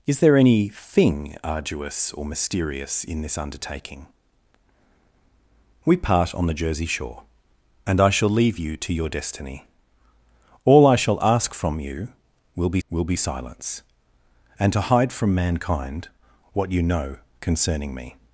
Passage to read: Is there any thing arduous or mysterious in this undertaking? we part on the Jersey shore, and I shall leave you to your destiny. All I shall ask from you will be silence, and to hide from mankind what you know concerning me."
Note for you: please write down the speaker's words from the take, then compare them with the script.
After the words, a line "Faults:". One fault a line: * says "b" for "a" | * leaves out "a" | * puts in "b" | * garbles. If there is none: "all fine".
Is there any thing arduous or mysterious in this undertaking? we part on the Jersey shore, and I shall leave you to your destiny. All I shall ask from you will be will be silence, and to hide from mankind what you know concerning me."
Faults:
* puts in "will be"